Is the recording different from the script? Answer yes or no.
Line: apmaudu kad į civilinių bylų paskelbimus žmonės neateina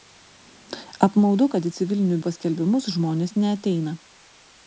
yes